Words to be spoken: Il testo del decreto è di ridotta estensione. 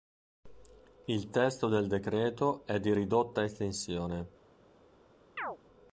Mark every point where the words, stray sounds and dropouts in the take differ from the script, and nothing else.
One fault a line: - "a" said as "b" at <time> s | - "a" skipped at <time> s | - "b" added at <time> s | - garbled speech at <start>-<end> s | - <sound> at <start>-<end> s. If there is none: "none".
- chirp at 5.4-5.6 s